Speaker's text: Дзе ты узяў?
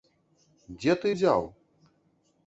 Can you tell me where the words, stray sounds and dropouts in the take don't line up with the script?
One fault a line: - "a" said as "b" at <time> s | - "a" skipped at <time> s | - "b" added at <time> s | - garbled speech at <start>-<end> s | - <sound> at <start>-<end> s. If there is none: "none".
none